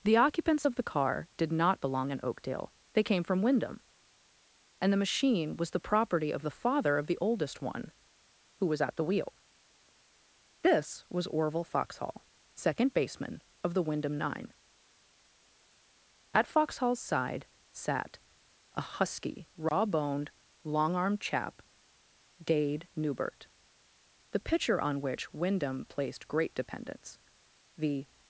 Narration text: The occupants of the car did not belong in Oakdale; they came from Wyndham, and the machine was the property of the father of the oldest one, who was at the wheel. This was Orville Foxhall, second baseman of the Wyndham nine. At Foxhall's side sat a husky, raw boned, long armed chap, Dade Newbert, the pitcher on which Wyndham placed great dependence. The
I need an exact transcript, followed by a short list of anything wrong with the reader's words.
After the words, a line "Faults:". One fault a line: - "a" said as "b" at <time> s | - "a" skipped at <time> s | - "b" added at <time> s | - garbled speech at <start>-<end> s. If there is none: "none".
The occupants of the car did not belong in Oakdale; they came from Wyndham, and the machine was the property of the father of the oldest one, who was at the wheel. This was Orville Foxhall, second baseman of the Wyndham nine. At Foxhall's side sat a husky, raw boned, long armed chap, Dade Newbert, the pitcher on which Wyndham placed great dependence. The
Faults:
none